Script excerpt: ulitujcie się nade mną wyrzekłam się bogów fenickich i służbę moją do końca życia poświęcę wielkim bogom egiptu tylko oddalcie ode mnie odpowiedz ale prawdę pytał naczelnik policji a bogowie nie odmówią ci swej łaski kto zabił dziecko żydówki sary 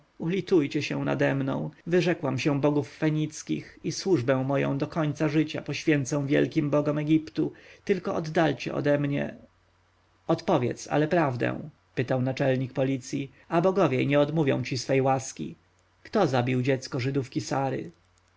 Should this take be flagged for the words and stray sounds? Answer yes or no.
no